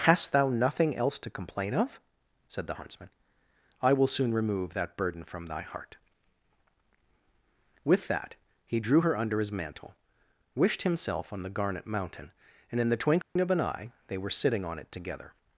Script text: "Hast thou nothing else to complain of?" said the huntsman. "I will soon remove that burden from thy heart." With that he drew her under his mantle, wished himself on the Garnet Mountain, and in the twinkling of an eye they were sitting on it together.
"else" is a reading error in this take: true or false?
false